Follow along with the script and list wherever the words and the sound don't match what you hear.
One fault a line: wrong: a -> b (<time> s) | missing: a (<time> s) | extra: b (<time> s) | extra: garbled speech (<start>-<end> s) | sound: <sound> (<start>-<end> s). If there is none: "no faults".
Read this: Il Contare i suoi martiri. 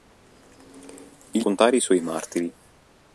no faults